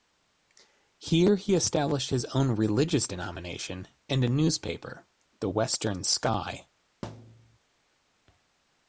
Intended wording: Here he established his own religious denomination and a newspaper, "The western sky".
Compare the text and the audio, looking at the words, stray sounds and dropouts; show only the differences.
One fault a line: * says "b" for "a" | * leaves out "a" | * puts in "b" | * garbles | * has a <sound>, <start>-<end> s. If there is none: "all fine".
* has a thud, 7.0-7.6 s